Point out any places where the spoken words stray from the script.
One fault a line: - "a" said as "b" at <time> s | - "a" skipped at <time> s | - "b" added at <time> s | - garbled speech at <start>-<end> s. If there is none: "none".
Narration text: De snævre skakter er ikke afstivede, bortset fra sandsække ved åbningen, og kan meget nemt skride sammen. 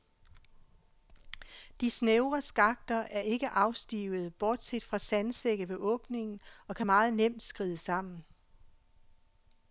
none